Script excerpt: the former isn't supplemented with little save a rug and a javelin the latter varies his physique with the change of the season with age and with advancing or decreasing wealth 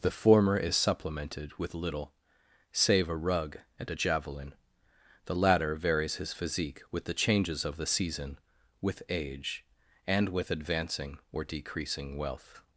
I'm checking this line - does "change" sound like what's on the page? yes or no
no